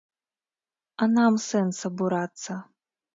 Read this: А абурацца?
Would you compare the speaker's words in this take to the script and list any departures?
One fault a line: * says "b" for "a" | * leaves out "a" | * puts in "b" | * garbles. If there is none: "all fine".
* puts in "нам сэнс"